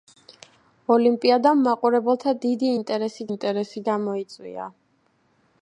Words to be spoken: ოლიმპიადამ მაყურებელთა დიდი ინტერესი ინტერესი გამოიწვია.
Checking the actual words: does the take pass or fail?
pass